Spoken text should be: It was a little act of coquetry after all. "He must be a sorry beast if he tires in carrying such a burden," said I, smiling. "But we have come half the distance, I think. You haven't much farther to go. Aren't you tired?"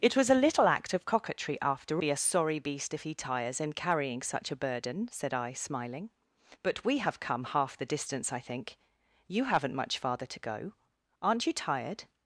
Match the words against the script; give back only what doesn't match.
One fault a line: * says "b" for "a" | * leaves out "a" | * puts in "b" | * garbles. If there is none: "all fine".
* leaves out "all He must"